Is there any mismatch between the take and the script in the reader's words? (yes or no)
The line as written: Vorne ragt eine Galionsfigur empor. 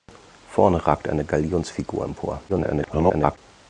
yes